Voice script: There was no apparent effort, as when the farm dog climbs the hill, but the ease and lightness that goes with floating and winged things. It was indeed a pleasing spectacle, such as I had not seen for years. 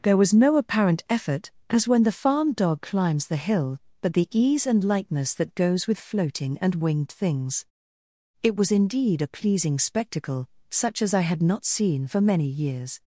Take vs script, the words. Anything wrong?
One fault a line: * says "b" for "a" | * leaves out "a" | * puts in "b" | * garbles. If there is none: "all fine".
* puts in "many"